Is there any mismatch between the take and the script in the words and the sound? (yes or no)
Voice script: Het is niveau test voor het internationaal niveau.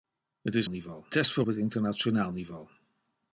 no